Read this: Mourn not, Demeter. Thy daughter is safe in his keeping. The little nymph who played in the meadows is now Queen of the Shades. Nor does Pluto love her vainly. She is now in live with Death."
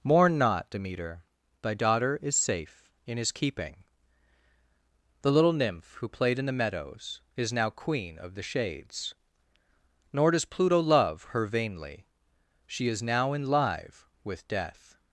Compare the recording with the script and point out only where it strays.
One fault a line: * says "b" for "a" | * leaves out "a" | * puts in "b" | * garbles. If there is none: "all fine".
all fine